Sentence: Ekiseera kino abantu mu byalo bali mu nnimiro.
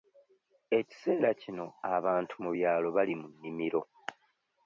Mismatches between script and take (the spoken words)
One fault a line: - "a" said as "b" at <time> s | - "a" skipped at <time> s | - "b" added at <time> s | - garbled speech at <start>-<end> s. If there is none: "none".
none